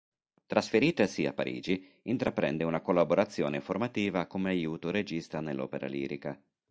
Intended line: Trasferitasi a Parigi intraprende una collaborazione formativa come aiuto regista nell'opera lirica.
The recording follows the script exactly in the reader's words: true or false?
true